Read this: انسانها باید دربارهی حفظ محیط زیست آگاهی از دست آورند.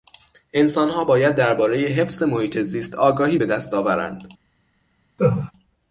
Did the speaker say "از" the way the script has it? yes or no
no